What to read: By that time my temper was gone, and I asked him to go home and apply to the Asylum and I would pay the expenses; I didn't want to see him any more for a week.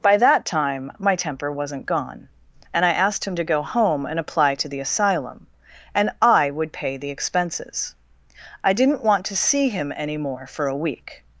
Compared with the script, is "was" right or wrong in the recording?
wrong